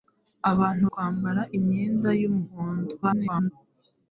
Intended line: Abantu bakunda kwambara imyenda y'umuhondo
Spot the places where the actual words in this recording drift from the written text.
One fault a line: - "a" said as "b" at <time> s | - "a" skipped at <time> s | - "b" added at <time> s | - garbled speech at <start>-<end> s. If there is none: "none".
- "bakunda" skipped at 0.9 s
- garbled speech at 3.0-3.5 s